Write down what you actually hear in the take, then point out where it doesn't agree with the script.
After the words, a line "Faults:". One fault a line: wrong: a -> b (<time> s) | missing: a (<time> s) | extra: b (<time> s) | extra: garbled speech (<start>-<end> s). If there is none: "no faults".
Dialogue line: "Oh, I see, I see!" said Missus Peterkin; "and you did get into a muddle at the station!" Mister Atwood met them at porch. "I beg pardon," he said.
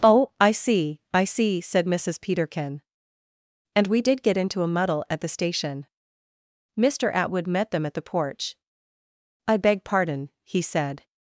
"Oh, I see, I see!" said Missus Peterkin; "and we did get into a muddle at the station!" Mister Atwood met them at the porch. "I beg pardon," he said.
Faults:
wrong: you -> we (3.9 s)
extra: the (8.0 s)